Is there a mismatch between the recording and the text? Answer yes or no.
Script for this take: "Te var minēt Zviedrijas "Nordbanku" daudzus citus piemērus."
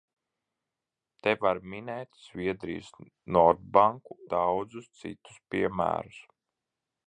no